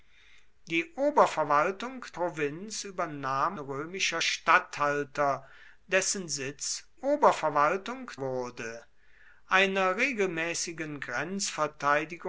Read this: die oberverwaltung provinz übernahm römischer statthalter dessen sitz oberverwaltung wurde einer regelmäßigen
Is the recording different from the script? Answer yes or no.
no